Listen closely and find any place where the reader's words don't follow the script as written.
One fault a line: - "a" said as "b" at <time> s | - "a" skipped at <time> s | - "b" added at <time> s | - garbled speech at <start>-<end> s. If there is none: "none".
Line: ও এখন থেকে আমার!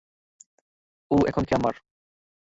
none